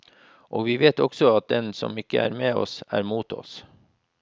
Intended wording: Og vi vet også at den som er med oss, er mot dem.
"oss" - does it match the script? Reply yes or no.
yes